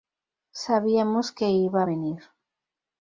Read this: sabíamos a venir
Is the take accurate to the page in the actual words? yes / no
no